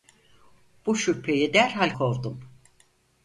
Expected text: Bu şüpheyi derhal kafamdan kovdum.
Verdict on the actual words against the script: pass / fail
fail